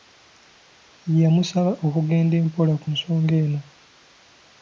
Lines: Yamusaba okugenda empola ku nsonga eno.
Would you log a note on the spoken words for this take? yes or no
no